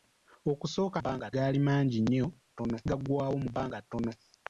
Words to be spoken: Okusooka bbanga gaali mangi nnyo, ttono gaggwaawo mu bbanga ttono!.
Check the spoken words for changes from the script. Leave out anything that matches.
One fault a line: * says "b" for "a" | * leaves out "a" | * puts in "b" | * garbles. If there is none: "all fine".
all fine